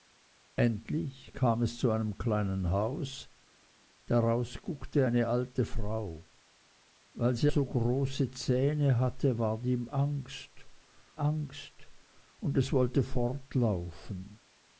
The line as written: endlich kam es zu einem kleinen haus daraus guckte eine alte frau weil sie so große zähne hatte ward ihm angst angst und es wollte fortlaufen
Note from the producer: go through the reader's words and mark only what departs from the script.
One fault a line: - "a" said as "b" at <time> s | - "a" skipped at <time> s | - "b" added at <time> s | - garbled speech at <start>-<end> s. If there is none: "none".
none